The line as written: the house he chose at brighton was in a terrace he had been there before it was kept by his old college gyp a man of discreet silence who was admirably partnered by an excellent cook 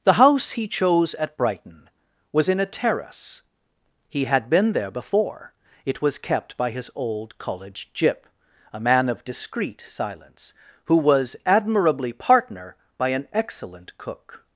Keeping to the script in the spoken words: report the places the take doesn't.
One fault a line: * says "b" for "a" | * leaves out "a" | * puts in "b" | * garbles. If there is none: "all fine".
* says "partner" for "partnered"